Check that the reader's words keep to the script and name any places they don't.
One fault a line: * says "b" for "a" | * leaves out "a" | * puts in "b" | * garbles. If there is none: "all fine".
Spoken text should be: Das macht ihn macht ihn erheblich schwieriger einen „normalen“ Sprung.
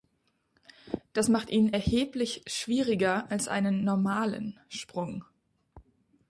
* leaves out "macht ihn"
* puts in "als"